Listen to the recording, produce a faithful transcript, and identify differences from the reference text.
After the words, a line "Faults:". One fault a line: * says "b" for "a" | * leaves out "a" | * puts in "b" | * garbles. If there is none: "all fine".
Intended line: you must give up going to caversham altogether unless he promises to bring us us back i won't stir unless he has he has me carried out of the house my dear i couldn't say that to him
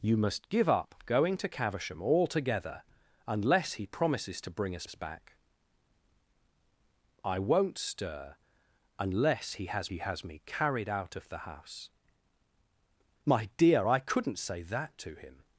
you must give up going to caversham altogether unless he promises to bring us us back i won't stir unless he has he has me carried out of the house my dear i couldn't say that to him
Faults:
all fine